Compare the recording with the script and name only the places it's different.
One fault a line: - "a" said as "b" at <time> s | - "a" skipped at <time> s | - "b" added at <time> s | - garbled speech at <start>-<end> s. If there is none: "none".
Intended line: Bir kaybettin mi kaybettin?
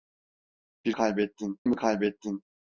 none